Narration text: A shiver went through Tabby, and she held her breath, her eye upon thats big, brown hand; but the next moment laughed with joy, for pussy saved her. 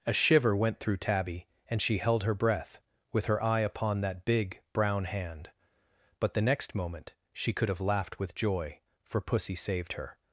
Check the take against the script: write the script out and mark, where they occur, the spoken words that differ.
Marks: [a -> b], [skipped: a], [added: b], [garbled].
A shiver went through Tabby, and she held her breath, [added: with] her eye upon [thats -> that] big, brown hand; but the next moment [added: she could have] laughed with joy, for pussy saved her.